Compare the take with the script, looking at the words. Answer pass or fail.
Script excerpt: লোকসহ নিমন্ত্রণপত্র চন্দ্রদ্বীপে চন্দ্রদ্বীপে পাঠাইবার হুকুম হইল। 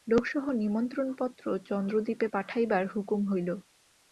fail